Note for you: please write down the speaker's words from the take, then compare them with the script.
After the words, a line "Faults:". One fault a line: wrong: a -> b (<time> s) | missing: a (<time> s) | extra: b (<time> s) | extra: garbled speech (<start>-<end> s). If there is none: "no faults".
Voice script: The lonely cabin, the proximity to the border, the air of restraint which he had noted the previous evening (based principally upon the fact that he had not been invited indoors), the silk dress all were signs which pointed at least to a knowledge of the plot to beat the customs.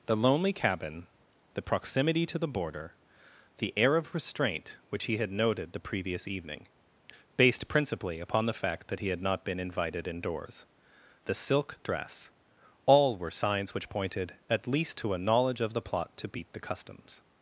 The lonely cabin, the proximity to the border, the air of restraint which he had noted the previous evening (based principally upon the fact that he had not been invited indoors), the silk dress all were signs which pointed at least to a knowledge of the plot to beat the customs.
Faults:
no faults